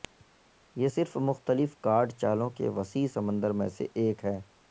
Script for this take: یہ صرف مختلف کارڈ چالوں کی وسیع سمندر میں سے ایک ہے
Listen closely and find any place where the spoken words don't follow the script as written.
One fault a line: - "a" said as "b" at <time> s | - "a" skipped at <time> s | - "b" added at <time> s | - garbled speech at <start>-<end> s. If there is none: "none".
- "کی" said as "کے" at 2.5 s